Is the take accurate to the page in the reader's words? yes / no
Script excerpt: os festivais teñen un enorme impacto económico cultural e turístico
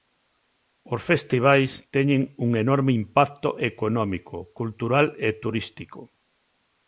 yes